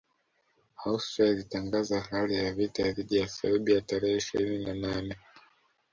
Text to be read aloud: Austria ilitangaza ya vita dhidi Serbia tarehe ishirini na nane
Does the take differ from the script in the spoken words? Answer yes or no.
yes